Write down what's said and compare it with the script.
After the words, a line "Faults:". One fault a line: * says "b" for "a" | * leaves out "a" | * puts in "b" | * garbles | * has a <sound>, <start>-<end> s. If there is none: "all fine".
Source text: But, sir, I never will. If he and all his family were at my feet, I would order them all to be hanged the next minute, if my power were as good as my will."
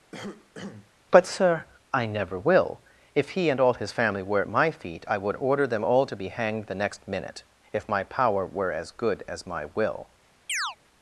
But, sir, I never will. If he and all his family were at my feet, I would order them all to be hanged the next minute, if my power were as good as my will."
Faults:
* has a cough, 0.1-0.9 s
* has a chirp, 10.5-10.8 s